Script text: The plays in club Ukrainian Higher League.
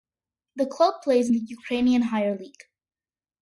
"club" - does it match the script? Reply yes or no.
no